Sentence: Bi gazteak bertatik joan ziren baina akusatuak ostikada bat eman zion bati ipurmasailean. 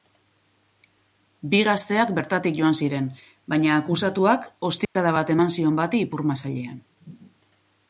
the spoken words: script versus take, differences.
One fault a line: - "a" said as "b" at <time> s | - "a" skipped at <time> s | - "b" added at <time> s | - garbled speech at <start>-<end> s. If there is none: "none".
none